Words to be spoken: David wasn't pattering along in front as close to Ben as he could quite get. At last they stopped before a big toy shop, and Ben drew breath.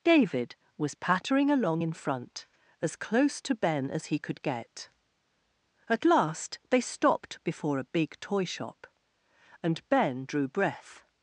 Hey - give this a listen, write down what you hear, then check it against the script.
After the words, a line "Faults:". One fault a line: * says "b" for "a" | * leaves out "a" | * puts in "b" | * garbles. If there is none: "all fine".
David was pattering along in front as close to Ben as he could get. At last they stopped before a big toy shop, and Ben drew breath.
Faults:
* says "was" for "wasn't"
* leaves out "quite"